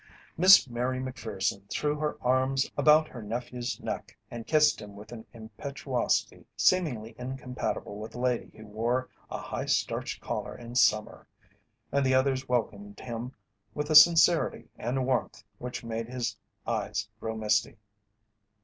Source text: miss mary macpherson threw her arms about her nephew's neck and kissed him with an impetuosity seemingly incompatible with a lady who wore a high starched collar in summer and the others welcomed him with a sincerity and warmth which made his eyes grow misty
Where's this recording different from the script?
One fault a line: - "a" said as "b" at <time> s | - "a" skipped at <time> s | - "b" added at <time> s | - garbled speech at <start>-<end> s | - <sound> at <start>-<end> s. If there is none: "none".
none